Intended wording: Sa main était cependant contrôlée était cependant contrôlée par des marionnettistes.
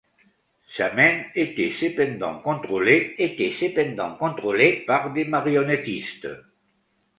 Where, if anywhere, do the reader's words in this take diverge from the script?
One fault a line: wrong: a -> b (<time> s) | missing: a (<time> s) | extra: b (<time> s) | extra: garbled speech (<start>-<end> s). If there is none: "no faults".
no faults